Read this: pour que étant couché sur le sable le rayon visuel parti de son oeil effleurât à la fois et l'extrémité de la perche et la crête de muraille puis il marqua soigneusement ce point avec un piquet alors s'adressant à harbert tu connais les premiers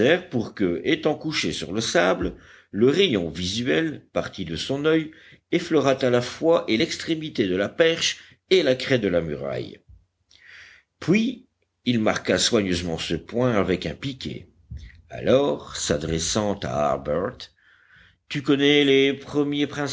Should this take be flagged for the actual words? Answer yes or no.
yes